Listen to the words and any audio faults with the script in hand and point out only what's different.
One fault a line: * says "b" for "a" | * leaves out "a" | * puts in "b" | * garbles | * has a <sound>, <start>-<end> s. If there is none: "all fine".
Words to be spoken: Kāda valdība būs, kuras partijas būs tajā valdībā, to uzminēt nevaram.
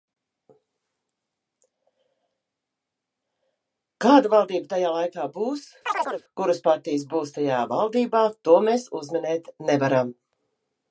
* puts in "tajā laikā"
* has a chirp, 5.9-6.2 s
* puts in "mēs"